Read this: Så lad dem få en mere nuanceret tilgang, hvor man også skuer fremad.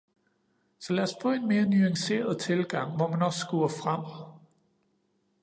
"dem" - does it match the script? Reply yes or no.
no